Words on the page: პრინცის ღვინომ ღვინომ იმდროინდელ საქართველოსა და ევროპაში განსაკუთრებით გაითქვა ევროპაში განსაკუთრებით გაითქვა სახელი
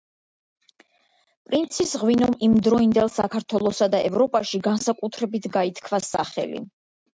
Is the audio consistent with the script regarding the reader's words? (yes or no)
no